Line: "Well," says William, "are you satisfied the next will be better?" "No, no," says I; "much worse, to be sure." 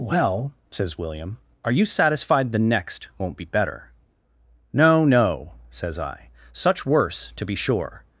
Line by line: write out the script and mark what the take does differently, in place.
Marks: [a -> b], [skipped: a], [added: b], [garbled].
"Well," says William, "are you satisfied the next [will -> won't] be better?" "No, no," says I; ["much -> such] worse, to be sure."